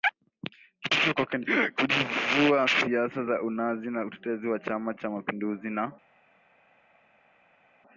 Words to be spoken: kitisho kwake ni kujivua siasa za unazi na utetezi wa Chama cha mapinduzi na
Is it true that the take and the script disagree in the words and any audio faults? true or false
false